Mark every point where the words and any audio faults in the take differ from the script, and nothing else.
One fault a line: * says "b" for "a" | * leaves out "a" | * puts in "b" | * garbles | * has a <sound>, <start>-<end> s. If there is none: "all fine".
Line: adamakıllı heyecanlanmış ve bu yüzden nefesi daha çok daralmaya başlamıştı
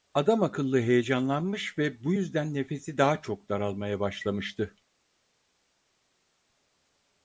all fine